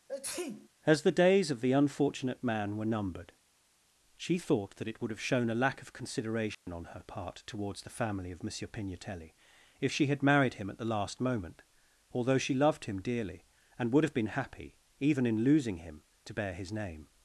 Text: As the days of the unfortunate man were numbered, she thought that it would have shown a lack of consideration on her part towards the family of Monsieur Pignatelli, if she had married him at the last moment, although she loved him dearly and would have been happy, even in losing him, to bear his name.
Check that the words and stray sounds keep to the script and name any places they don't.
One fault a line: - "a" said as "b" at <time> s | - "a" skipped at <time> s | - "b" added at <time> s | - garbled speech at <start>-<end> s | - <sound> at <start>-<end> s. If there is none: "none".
- sneeze at 0.1-0.7 s
- dropout at 6.5-6.7 s